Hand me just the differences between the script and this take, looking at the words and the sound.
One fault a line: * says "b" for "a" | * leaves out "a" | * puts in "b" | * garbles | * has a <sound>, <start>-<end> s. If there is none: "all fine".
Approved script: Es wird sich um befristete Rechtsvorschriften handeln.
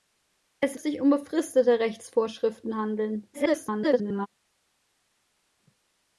* leaves out "wird"
* garbles